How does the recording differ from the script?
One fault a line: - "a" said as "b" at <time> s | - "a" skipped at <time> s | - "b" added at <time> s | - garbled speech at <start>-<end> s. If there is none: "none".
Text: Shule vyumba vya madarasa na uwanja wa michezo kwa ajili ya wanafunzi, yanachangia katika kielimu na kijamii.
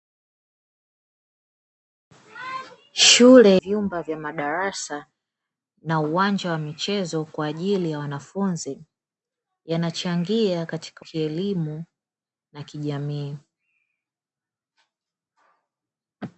none